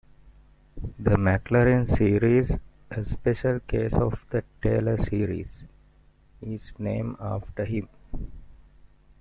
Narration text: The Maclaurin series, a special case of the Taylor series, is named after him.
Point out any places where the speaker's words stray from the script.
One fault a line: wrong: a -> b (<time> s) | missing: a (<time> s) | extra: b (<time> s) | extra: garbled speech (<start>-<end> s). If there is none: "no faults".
no faults